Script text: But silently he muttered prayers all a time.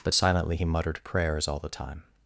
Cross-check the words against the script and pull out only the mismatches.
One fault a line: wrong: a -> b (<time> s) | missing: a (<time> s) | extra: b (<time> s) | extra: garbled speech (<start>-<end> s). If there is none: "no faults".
wrong: a -> the (1.6 s)